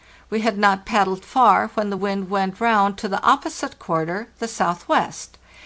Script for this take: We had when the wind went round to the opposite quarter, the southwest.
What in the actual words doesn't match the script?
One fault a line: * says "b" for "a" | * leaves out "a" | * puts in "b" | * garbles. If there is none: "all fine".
* puts in "not paddled far"